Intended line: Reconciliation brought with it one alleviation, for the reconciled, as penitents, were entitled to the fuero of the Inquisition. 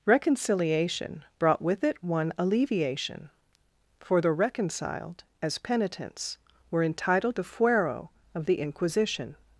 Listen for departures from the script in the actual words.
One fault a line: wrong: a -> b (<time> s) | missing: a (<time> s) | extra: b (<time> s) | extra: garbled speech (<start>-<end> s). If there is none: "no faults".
missing: to (7.4 s)